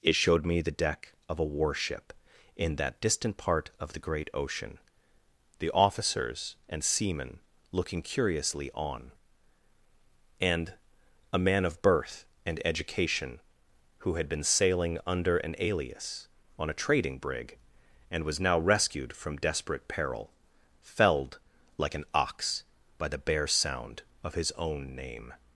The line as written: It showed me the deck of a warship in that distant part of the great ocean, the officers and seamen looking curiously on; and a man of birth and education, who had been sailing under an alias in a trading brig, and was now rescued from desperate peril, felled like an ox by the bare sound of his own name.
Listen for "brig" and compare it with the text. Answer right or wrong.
right